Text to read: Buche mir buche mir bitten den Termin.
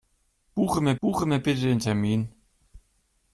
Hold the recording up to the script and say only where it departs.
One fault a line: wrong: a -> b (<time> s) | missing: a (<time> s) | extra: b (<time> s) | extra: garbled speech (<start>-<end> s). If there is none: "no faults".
no faults